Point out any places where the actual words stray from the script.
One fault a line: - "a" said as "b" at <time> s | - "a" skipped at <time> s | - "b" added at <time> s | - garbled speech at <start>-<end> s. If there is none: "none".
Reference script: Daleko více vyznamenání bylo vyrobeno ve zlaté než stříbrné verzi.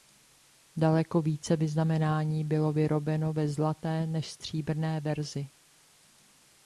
none